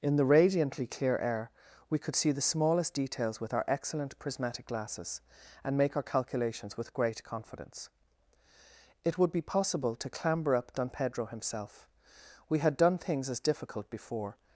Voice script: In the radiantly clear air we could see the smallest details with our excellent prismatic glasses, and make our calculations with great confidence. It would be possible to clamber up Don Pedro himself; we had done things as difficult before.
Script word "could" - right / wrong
right